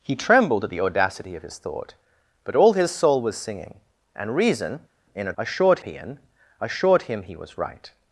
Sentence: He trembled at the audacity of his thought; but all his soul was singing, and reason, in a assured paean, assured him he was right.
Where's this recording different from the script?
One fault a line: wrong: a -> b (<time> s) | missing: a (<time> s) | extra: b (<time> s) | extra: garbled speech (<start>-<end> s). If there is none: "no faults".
no faults